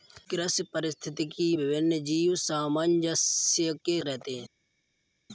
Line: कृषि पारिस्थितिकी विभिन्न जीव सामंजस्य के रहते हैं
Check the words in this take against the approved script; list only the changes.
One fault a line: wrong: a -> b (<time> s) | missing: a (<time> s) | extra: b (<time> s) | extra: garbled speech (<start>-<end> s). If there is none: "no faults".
no faults